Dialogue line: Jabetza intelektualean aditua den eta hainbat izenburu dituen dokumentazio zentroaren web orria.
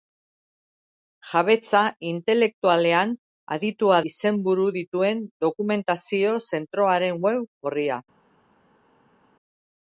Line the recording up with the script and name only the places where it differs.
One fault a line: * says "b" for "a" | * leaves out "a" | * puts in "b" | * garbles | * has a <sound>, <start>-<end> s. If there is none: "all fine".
* leaves out "den eta hainbat"